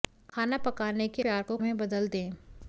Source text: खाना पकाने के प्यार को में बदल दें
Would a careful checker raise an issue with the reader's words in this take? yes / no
no